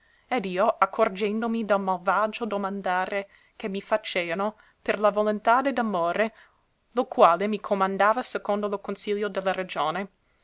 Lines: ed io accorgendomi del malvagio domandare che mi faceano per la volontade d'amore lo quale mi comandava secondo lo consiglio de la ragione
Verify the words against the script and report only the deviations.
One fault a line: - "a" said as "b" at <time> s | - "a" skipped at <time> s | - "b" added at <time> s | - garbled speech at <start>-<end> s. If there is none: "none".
none